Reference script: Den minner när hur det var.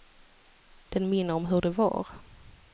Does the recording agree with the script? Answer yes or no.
no